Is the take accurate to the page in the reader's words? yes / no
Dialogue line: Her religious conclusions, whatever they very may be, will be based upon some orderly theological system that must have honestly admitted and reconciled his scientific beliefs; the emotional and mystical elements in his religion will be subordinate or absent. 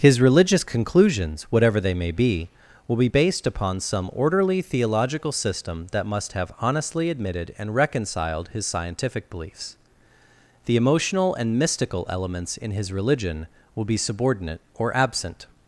no